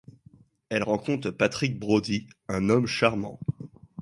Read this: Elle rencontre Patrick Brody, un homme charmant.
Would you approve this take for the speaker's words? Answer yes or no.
yes